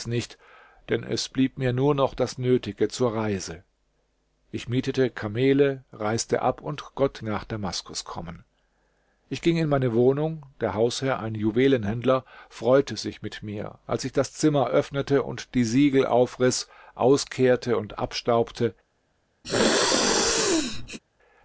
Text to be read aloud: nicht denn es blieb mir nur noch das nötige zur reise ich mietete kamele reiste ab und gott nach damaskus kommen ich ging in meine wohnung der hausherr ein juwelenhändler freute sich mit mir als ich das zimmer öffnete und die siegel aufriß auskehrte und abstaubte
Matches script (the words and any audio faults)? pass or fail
fail